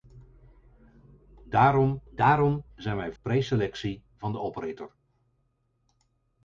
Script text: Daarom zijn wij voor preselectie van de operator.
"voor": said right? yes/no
no